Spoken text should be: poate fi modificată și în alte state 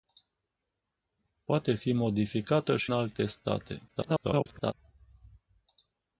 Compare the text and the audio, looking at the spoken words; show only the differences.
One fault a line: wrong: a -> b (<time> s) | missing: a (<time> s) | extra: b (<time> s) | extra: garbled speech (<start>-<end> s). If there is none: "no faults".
missing: în (2.9 s)
extra: garbled speech (3.9-4.7 s)